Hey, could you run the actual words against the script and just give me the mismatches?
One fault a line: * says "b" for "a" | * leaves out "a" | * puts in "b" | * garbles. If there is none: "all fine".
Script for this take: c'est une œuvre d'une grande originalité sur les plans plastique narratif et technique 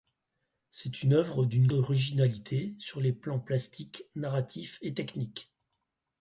* leaves out "grande"